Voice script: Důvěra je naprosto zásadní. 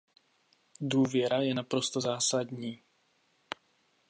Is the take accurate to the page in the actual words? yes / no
yes